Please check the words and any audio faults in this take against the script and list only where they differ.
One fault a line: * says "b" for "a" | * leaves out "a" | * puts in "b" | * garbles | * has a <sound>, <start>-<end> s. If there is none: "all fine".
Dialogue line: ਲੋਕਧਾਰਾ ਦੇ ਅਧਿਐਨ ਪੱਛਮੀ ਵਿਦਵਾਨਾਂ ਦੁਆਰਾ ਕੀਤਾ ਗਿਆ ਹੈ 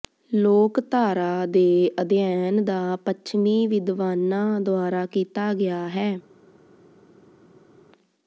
* puts in "ਦਾ"